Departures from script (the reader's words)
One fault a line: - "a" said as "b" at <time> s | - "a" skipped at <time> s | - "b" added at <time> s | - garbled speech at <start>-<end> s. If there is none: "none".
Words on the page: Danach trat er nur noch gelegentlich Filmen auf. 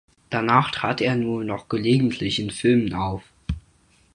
- "in" added at 2.4 s